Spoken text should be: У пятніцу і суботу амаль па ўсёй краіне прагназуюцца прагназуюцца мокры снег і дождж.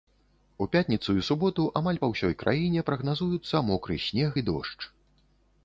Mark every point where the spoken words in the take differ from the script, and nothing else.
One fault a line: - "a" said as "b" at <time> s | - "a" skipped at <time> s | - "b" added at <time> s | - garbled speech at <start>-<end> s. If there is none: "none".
- "прагназуюцца" skipped at 3.6 s